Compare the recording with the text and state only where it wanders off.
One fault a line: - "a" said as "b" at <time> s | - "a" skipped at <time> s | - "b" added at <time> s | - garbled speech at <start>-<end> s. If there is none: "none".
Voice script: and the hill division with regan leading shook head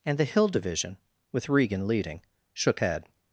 none